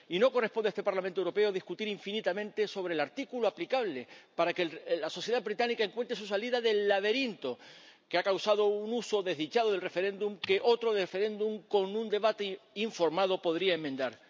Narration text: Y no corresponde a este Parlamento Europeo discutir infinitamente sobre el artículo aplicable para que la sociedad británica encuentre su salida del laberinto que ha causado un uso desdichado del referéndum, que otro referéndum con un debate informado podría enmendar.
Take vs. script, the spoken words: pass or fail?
pass